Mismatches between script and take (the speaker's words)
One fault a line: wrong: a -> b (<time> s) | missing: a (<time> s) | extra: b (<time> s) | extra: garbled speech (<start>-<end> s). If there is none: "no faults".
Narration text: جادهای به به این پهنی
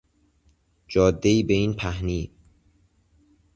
missing: به (1.5 s)